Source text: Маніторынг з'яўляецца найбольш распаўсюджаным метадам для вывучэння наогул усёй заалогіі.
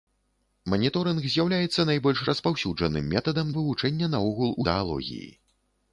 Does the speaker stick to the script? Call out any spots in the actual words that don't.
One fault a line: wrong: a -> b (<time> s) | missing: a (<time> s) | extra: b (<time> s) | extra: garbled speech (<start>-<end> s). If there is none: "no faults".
missing: для (3.5 s)
missing: усёй (4.6 s)